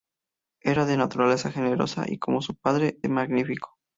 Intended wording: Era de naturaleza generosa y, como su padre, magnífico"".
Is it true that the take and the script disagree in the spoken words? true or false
false